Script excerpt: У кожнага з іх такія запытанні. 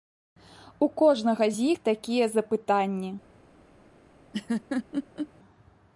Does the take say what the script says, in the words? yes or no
yes